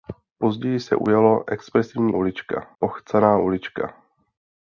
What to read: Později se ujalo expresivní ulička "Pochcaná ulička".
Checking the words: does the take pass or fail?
pass